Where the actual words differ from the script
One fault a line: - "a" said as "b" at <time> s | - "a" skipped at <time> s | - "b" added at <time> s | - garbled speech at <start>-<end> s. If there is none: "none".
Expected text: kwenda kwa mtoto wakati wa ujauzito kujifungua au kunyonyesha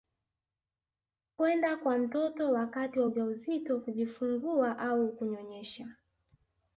none